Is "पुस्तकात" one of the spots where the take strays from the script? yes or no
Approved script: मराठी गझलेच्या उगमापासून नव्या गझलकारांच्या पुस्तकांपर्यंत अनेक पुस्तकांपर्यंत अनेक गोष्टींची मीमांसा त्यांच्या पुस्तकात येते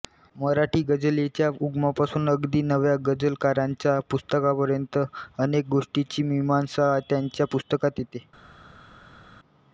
no